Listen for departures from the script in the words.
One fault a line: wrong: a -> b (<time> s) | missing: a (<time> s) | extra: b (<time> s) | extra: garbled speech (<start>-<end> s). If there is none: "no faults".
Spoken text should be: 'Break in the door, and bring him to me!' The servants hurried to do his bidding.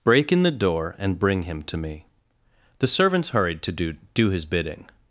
extra: do (4.2 s)